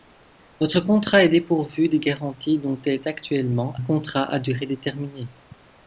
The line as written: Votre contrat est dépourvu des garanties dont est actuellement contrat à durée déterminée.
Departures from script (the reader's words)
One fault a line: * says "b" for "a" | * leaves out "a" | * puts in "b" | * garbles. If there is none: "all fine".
all fine